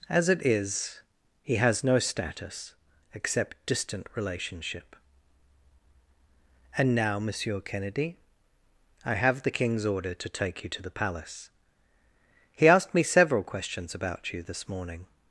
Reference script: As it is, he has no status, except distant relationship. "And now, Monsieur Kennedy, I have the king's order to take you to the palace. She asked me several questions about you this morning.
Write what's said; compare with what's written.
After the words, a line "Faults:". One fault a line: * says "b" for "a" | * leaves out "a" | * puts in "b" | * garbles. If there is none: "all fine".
As it is, he has no status, except distant relationship. "And now, Monsieur Kennedy, I have the king's order to take you to the palace. He asked me several questions about you this morning.
Faults:
* says "He" for "She"